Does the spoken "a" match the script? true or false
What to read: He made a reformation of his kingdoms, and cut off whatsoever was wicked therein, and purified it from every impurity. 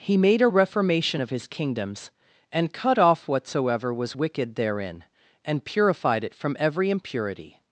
true